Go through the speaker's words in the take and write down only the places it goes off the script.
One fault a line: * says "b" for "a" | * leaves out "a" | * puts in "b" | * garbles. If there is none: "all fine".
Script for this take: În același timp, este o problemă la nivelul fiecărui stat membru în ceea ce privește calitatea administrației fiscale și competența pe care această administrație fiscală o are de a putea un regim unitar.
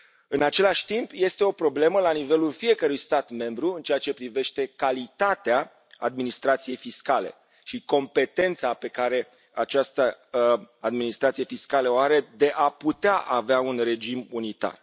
* puts in "avea"